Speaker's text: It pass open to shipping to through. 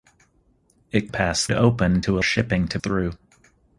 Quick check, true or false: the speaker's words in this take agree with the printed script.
true